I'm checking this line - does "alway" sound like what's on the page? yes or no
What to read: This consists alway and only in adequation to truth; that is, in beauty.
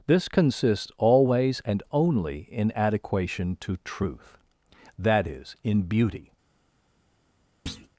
no